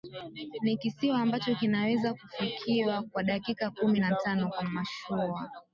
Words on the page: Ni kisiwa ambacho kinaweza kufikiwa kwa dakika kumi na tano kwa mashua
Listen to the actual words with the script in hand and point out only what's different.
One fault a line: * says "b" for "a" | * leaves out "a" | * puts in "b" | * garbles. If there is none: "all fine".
all fine